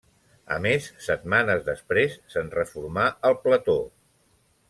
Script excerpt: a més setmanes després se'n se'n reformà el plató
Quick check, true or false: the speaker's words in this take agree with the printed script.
false